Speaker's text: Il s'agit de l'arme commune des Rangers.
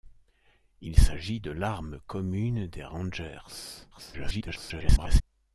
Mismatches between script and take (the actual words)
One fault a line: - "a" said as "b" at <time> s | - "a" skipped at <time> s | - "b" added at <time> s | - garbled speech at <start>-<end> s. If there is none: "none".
- garbled speech at 3.9-5.2 s